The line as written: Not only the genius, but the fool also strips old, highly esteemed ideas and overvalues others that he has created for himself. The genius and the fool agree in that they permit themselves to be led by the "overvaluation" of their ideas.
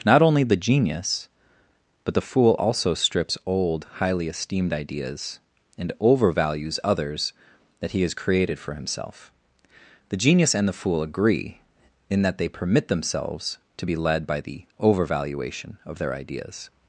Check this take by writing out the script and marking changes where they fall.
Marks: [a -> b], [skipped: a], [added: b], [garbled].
Not only the genius, but the fool also strips old, highly esteemed ideas and overvalues others that he has created for himself. The genius and the fool agree in that they permit themselves to be led by the "overvaluation" of their ideas.